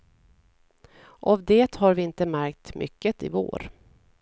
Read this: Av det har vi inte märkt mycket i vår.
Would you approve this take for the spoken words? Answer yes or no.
yes